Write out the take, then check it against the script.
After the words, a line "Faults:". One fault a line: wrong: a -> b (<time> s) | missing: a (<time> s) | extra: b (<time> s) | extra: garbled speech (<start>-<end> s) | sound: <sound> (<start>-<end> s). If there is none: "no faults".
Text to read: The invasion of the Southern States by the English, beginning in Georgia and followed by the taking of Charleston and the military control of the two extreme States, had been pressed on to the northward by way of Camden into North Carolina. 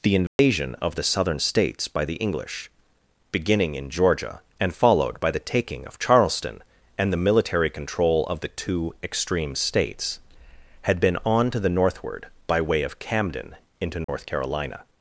The invasion of the Southern States by the English, beginning in Georgia and followed by the taking of Charleston and the military control of the two extreme States, had been on to the northward by way of Camden into North Carolina.
Faults:
sound: dropout (0.3-0.4 s)
missing: pressed (11.2 s)
sound: dropout (14.0-14.1 s)